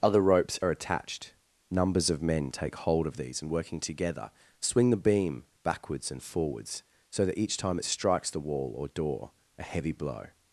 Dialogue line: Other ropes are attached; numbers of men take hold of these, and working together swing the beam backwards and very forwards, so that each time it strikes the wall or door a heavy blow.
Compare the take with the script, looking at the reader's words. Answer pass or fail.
fail